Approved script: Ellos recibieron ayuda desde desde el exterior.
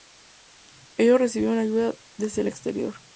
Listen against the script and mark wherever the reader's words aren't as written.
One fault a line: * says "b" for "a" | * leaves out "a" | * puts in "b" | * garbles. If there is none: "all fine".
* leaves out "desde"